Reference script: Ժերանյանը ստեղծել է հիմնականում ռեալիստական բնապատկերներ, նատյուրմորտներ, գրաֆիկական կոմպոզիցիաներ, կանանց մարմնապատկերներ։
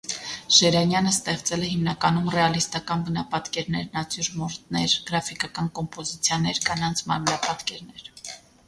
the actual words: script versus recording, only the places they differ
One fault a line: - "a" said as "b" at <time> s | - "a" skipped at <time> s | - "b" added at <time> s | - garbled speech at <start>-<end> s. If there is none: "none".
none